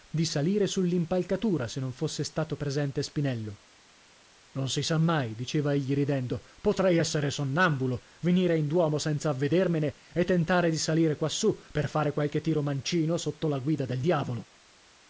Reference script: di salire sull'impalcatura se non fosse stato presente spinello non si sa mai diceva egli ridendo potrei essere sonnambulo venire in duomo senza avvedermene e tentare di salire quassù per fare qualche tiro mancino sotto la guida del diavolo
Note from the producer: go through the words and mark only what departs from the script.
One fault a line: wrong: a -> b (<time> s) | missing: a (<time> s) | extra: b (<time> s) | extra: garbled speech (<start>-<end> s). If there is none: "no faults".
no faults